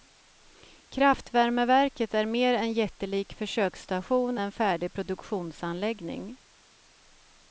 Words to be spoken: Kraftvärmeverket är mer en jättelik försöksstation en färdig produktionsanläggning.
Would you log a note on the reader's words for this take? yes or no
no